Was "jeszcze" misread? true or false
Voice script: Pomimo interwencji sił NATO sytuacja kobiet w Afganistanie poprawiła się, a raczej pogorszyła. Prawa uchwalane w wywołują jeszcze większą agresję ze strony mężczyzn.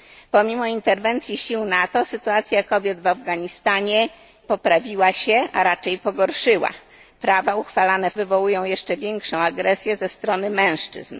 false